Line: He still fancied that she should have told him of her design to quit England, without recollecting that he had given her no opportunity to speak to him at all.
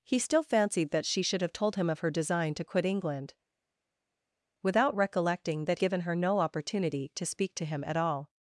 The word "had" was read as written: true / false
false